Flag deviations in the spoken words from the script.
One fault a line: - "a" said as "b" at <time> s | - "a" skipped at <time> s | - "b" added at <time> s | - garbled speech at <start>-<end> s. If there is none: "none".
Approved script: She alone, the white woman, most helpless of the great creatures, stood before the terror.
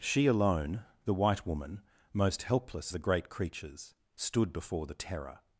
- "of" skipped at 2.9 s